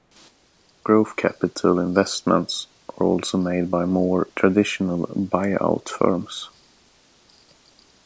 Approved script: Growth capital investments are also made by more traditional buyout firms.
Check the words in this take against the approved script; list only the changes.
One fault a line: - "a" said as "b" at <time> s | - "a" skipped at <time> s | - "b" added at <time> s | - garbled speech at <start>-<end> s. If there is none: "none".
none